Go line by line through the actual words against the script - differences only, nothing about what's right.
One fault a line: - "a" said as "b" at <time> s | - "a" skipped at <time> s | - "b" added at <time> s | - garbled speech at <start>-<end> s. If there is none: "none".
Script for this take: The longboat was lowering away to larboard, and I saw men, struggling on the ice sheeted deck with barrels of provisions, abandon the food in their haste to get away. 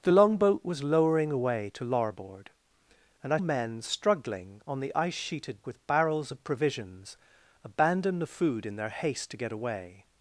- "saw" skipped at 3.4 s
- "deck" skipped at 5.6 s